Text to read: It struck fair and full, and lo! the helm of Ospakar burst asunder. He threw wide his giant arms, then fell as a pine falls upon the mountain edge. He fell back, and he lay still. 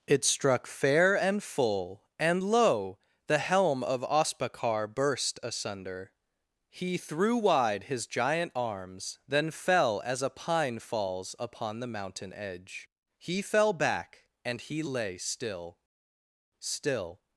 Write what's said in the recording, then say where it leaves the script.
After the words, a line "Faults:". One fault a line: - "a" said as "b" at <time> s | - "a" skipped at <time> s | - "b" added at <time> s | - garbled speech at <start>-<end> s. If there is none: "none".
It struck fair and full, and lo! the helm of Ospakar burst asunder. He threw wide his giant arms, then fell as a pine falls upon the mountain edge. He fell back, and he lay still still.
Faults:
- "still" added at 16.6 s